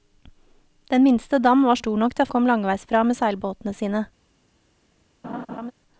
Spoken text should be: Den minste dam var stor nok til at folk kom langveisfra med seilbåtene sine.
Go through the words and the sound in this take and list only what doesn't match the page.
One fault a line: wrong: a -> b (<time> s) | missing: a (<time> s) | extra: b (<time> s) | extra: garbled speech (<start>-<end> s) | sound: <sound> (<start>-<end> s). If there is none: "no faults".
missing: folk (2.3 s)
sound: laugh (5.2-5.7 s)